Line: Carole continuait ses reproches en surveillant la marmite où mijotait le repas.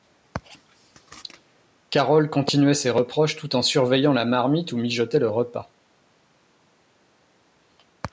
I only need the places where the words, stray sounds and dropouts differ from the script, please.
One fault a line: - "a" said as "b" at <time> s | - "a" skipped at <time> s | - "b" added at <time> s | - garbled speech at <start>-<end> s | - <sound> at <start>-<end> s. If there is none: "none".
- "tout" added at 3.4 s